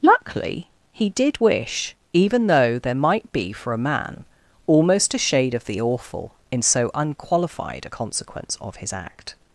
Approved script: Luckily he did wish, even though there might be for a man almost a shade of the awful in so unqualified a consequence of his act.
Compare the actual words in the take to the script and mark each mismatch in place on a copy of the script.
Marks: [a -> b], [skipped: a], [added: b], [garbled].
Luckily he did wish, even though there might be for a man almost a shade of the awful in so unqualified a consequence of his act.